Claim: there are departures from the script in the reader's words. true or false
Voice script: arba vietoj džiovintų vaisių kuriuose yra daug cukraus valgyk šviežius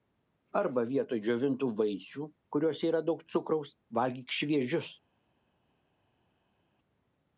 false